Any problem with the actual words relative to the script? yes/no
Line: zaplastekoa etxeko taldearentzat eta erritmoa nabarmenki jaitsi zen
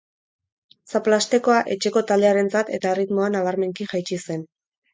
no